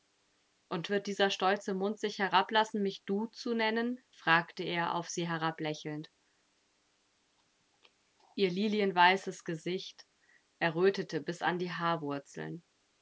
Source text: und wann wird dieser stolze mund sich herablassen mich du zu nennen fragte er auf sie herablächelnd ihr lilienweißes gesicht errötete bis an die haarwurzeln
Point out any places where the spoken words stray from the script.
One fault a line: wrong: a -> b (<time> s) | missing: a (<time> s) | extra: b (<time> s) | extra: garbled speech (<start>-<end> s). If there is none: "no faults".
missing: wann (0.9 s)